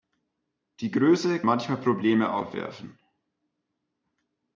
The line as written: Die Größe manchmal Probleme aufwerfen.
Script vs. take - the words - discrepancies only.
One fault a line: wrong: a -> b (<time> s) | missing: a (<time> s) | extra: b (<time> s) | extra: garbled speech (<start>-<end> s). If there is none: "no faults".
no faults